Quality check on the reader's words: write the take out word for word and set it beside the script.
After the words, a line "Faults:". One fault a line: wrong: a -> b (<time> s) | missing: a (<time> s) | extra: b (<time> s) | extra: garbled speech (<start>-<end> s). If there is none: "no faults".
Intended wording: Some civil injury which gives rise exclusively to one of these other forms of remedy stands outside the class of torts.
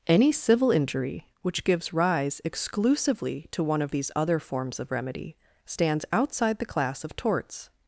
Any civil injury which gives rise exclusively to one of these other forms of remedy stands outside the class of torts.
Faults:
wrong: Some -> Any (0.1 s)